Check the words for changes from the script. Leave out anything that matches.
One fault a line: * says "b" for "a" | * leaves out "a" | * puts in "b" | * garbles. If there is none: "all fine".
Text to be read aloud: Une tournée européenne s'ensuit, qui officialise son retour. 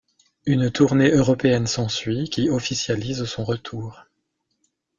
all fine